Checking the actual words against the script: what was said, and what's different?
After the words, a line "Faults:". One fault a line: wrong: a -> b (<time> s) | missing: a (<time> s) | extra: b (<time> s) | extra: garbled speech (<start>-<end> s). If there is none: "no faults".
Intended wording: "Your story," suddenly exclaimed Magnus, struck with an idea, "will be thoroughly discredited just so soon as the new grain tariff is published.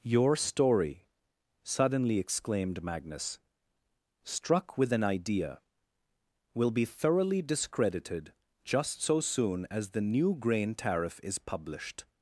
"Your story," suddenly exclaimed Magnus, struck with an idea, "will be thoroughly discredited just so soon as the new grain tariff is published.
Faults:
no faults